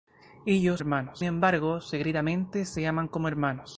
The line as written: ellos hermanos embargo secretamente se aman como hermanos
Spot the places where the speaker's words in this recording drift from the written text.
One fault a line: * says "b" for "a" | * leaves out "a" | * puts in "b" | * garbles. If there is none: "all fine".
all fine